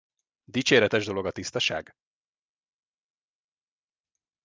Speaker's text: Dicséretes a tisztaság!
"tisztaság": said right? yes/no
yes